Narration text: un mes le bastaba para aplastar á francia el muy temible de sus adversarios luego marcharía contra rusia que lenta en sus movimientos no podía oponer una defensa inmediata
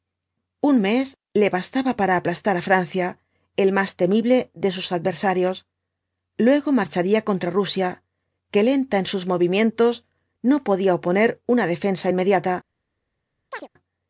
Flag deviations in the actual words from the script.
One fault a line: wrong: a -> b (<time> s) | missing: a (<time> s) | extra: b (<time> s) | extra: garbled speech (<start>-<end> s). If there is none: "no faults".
wrong: muy -> más (3.8 s)